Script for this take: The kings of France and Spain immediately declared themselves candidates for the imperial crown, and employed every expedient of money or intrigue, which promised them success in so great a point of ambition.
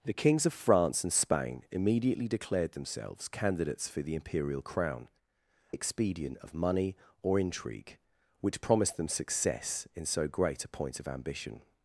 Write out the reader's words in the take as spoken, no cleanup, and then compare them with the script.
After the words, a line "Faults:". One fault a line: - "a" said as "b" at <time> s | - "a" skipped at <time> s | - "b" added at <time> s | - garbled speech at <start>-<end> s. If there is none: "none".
The kings of France and Spain immediately declared themselves candidates for the imperial crown, expedient of money or intrigue, which promised them success in so great a point of ambition.
Faults:
- "and employed every" skipped at 5.1 s